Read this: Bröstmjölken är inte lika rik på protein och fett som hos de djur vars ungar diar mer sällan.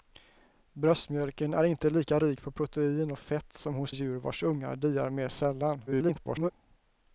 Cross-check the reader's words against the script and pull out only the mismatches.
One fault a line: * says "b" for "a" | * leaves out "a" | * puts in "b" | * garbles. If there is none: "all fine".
* leaves out "de"
* garbles